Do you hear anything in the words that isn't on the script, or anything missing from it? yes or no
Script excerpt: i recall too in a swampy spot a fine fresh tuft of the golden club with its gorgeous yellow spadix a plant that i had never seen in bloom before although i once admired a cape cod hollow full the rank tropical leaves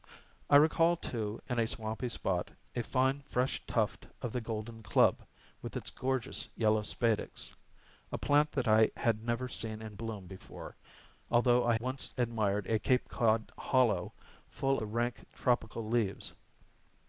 no